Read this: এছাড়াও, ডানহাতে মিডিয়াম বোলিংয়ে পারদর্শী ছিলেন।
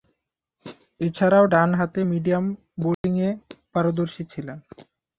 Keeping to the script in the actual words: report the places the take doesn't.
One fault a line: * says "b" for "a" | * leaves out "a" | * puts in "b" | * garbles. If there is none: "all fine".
all fine